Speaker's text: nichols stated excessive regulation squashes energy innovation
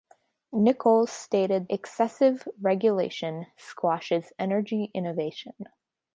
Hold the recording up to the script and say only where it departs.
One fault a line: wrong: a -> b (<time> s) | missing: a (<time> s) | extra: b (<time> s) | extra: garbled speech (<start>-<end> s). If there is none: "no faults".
no faults